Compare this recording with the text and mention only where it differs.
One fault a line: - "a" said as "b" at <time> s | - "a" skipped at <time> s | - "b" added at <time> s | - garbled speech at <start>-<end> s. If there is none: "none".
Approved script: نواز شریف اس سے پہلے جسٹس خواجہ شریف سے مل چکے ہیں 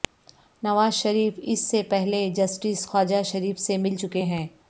none